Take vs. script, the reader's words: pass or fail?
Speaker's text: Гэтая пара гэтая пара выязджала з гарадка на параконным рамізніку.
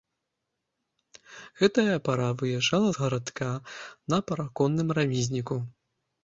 fail